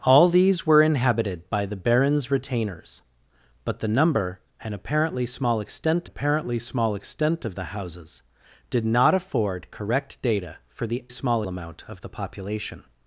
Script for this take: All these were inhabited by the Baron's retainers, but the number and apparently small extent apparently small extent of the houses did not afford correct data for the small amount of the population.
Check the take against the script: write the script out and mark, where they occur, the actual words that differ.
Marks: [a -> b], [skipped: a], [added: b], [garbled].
All these were inhabited by the Baron's retainers, but the number and apparently small extent apparently small extent of the houses did not afford correct data for the small amount of the population.